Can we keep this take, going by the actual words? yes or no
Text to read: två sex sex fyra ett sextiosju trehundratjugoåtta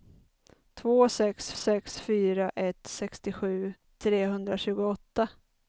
yes